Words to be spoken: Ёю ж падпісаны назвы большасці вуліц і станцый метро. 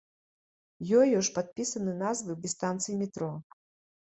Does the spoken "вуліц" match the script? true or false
false